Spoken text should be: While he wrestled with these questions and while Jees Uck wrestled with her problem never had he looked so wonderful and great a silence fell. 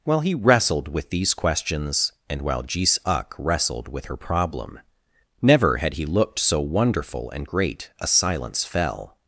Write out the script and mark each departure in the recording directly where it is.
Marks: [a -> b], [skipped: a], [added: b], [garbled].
While he wrestled with these questions and while Jees Uck wrestled with her problem never had he looked so wonderful and great a silence fell.